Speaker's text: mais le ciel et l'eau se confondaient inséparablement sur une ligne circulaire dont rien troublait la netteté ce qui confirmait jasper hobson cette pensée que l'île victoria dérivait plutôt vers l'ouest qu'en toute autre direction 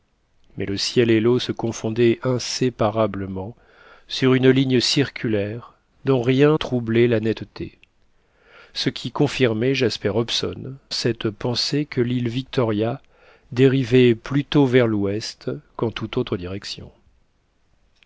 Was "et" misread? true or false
false